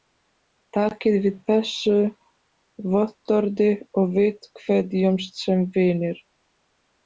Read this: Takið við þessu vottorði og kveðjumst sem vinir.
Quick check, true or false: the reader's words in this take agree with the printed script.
false